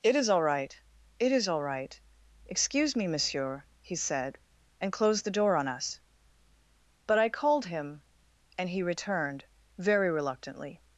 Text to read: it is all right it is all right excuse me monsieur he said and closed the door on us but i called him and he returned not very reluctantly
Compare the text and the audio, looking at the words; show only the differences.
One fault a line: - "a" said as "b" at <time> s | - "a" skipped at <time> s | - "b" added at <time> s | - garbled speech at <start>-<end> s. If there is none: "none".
- "not" skipped at 9.4 s